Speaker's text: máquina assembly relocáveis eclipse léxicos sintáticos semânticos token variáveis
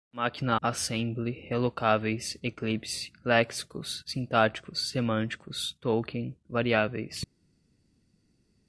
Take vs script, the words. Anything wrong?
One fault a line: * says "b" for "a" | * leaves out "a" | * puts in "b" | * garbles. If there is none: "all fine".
all fine